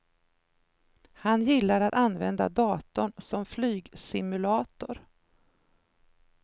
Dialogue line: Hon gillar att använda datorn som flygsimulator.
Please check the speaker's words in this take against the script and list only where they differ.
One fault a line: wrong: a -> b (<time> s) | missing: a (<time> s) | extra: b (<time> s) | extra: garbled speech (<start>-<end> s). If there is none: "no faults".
wrong: Hon -> Han (1.1 s)